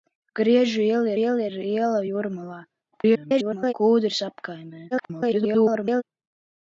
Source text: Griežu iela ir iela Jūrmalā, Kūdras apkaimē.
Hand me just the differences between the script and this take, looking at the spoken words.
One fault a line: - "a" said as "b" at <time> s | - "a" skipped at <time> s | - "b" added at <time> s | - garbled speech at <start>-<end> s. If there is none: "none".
- "iela" added at 1.2 s
- garbled speech at 2.9-3.7 s
- garbled speech at 4.9-6.0 s